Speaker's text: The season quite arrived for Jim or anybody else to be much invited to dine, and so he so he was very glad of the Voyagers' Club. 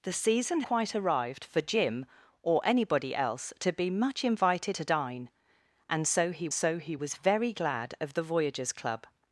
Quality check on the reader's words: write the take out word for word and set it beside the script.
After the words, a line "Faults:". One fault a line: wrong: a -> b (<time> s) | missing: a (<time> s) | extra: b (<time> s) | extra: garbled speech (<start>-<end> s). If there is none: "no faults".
The season quite arrived for Jim or anybody else to be much invited to dine, and so he so he was very glad of the Voyagers' Club.
Faults:
no faults